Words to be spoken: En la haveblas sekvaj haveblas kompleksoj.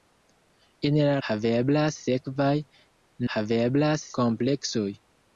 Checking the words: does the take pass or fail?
pass